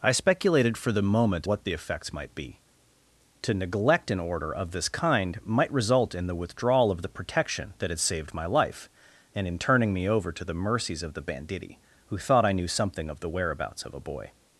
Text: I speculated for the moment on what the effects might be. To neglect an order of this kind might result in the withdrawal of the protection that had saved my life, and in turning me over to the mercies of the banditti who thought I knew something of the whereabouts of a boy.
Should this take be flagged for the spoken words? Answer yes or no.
yes